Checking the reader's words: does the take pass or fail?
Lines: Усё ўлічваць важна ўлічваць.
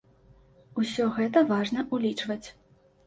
fail